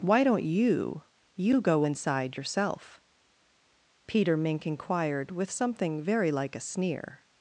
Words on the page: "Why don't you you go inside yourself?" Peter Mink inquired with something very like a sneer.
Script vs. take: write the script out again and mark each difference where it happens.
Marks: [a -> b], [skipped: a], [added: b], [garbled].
"Why don't you you go inside yourself?" Peter Mink inquired with something very like a sneer.